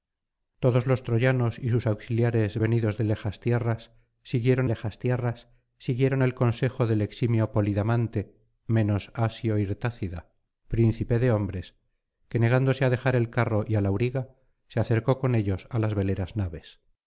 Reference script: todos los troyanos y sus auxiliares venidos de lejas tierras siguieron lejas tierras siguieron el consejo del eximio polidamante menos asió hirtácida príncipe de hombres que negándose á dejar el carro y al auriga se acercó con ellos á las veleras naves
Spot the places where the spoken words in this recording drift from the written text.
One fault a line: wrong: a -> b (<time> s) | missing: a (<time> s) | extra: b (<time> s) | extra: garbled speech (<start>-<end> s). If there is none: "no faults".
no faults